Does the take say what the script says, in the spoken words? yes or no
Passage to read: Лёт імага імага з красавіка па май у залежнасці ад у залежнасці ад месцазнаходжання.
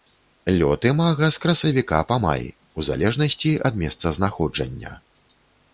no